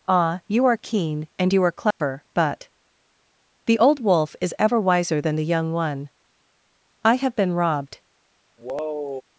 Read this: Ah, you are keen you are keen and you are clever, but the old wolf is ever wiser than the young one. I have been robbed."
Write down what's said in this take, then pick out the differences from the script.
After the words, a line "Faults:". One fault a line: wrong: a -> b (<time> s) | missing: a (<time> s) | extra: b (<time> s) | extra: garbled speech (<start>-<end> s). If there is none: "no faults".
Ah, you are keen and you are clever, but the old wolf is ever wiser than the young one. I have been robbed."
Faults:
missing: you are keen (1.3 s)